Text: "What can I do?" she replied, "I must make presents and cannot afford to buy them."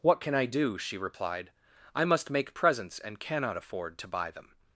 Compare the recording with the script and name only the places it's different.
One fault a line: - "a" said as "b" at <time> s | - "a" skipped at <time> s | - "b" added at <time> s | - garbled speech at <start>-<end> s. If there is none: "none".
none